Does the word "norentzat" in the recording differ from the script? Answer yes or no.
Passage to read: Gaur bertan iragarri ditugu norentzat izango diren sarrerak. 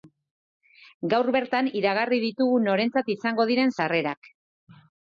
no